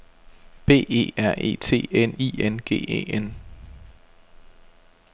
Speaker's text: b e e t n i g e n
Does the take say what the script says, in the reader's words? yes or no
no